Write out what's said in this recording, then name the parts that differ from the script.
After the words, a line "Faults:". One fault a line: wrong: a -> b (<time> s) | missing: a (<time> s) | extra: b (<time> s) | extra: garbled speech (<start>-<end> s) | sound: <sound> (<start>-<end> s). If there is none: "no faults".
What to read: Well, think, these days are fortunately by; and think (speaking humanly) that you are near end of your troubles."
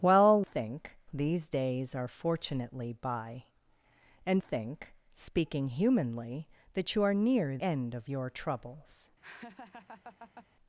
Well, think, these days are fortunately by; and think (speaking humanly) that you are near end of your troubles."
Faults:
sound: laugh (9.2-10.5 s)